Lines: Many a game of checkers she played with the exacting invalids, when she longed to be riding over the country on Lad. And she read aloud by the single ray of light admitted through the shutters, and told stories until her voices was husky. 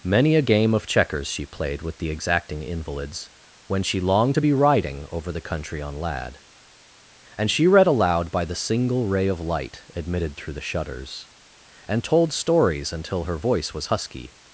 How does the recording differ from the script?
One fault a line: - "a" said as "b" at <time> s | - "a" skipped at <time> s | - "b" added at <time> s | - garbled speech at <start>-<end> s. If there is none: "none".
- "voices" said as "voice" at 13.4 s